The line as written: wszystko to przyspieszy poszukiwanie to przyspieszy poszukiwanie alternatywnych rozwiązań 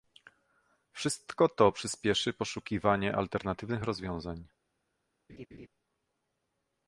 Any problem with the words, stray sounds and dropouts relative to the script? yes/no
yes